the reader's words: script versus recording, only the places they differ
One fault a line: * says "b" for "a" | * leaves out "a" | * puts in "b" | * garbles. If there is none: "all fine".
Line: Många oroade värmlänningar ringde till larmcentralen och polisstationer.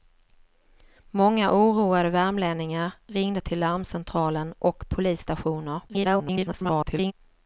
* garbles